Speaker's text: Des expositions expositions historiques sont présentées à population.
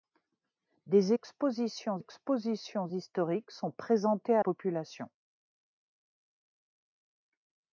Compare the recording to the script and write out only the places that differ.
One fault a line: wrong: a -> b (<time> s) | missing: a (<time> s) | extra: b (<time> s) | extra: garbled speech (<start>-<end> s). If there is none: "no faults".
no faults